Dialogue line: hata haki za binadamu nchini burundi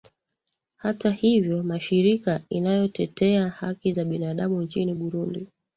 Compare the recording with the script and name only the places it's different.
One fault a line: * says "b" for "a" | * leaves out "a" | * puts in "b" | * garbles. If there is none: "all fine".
* puts in "hivyo mashirika inayotetea"